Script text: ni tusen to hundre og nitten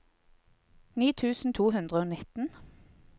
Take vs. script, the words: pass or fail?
pass